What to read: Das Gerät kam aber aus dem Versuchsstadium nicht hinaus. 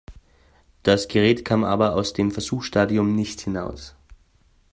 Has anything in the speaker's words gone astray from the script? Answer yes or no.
no